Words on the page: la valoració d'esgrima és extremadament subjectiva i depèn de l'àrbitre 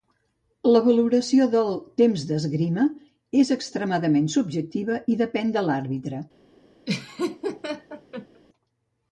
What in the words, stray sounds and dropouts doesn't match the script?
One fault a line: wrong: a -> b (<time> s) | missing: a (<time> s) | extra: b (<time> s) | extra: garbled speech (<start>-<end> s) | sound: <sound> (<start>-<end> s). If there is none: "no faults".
extra: del temps (1.6 s)
sound: laugh (6.9-8.4 s)